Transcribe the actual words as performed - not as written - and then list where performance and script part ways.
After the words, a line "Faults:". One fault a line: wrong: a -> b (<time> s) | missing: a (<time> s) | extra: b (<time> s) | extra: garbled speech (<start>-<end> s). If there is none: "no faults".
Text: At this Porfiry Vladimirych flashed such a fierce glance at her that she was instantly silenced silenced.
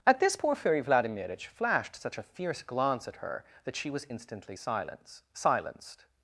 At this Porfiry Vladimirych flashed such a fierce glance at her that she was instantly silenced silenced.
Faults:
no faults